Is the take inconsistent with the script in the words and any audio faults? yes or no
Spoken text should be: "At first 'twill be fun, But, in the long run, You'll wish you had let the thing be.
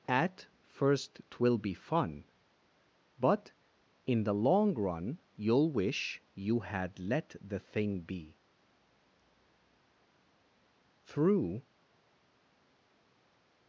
yes